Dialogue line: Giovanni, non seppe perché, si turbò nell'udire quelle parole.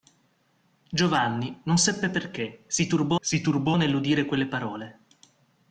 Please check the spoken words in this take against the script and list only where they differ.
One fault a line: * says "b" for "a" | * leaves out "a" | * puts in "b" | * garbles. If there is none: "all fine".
* puts in "si turbò"